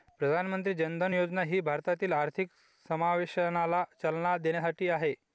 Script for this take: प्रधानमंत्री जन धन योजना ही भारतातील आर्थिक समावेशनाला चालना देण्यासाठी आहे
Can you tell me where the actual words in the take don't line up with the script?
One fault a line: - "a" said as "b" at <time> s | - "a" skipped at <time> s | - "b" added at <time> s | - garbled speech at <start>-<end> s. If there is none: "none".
none